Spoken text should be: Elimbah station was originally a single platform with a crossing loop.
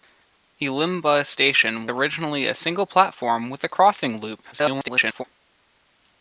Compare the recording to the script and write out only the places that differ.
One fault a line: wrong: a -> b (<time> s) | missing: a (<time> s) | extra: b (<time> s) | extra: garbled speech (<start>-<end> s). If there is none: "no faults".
missing: was (1.9 s)
extra: garbled speech (4.5-5.2 s)